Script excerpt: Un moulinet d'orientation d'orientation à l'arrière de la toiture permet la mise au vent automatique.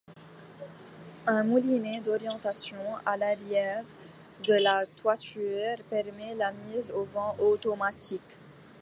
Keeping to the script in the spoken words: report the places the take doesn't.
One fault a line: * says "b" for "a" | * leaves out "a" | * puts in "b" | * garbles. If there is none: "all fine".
* leaves out "d'orientation"